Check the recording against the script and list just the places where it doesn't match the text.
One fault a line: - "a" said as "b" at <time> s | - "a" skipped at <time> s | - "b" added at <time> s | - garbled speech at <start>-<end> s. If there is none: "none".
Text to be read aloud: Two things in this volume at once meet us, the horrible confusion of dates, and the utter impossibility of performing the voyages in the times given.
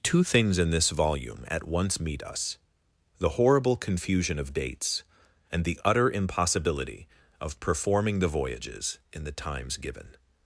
none